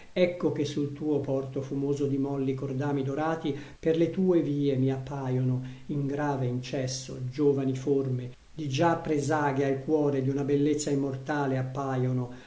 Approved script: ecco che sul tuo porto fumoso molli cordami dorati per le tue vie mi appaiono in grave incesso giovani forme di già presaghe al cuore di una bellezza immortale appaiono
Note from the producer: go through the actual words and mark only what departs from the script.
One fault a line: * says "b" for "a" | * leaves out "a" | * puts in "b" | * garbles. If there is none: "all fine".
* puts in "di"